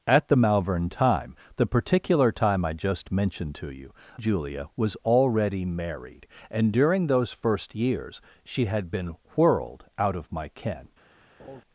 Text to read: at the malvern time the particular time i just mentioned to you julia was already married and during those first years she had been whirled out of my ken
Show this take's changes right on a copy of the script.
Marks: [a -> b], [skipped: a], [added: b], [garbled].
at the malvern time the particular time i just mentioned to you julia was already married and during those first years she had been whirled out of my ken